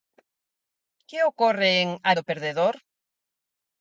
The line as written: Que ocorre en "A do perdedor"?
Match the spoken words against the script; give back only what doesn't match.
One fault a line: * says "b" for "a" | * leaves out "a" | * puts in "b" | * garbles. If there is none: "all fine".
all fine